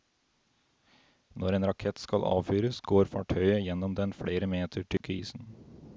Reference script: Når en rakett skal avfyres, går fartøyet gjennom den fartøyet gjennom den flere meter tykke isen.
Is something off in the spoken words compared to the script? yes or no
yes